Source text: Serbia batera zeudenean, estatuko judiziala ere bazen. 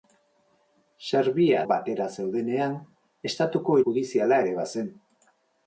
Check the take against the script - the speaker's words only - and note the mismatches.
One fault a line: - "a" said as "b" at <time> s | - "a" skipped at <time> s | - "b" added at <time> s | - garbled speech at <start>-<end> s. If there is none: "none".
none